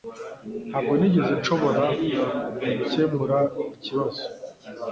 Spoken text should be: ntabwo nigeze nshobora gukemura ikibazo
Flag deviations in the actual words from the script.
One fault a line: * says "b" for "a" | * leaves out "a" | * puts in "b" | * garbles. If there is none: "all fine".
all fine